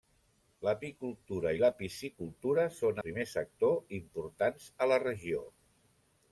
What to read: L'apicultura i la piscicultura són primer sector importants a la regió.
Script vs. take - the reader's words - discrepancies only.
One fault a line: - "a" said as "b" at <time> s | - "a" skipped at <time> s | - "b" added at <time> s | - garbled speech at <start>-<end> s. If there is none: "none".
none